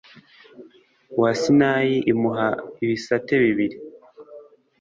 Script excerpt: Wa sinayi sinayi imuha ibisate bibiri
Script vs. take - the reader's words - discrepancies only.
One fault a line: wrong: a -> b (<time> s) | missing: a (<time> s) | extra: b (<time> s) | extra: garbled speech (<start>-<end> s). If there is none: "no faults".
missing: sinayi (2.0 s)